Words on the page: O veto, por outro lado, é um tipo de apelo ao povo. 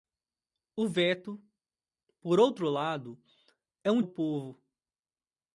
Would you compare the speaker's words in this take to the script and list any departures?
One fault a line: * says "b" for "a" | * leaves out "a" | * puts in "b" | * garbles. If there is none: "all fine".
* leaves out "tipo de apelo"